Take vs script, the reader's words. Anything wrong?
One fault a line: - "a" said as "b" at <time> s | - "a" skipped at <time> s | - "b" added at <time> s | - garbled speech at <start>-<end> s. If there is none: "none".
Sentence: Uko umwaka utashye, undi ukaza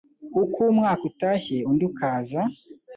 none